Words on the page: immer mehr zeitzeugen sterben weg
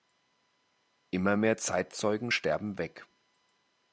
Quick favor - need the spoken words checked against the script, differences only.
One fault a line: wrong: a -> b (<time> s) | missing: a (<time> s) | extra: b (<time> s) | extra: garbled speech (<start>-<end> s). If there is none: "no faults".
no faults